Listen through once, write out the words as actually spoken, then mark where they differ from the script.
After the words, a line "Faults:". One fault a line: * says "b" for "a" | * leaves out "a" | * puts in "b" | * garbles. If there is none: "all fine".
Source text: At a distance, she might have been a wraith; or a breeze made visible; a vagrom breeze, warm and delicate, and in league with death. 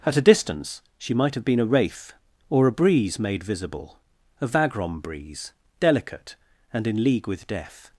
At a distance, she might have been a wraith; or a breeze made visible; a vagrom breeze, delicate, and in league with death.
Faults:
* leaves out "warm and"